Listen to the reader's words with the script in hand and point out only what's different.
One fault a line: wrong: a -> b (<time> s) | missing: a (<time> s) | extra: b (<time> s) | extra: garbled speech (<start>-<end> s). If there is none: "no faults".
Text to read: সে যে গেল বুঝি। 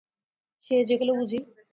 no faults